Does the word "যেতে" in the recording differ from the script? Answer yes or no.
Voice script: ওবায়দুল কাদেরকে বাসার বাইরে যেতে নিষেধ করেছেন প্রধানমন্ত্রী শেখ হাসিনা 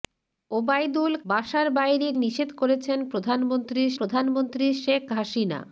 yes